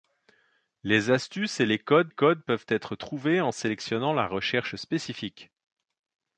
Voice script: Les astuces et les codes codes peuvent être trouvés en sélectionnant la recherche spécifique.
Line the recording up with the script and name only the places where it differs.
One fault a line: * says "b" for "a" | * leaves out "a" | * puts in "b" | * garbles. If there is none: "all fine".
all fine